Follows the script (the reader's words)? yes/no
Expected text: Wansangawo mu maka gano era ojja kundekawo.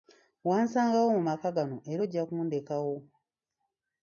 yes